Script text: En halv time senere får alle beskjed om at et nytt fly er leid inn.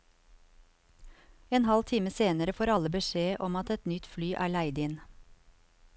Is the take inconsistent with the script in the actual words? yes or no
no